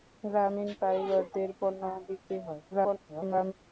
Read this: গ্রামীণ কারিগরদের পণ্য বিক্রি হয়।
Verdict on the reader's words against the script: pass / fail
fail